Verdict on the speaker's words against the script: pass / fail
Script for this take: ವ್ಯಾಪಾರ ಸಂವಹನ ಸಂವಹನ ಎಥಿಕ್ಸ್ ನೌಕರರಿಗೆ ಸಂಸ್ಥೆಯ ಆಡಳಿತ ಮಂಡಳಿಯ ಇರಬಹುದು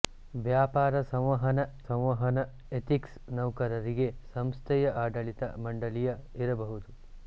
pass